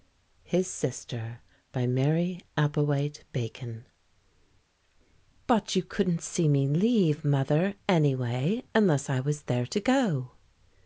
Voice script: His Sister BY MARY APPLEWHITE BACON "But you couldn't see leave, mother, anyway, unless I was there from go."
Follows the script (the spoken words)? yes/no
no